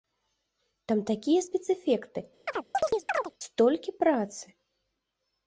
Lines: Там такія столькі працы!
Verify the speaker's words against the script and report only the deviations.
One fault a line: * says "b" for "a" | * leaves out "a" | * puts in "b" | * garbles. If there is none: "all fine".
* puts in "спецэфекты"